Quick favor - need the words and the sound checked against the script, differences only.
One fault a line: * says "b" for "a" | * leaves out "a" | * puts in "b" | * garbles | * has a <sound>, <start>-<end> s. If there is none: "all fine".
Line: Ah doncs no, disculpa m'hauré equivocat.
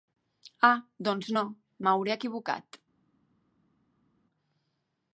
* leaves out "disculpa"